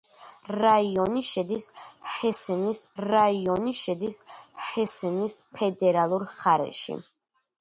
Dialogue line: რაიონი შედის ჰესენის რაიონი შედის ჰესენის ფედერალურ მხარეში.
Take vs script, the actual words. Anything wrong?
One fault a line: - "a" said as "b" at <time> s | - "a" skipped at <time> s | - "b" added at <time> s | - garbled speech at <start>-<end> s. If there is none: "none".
none